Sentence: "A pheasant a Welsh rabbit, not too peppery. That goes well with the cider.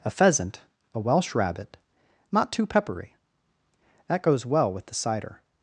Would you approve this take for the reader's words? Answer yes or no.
yes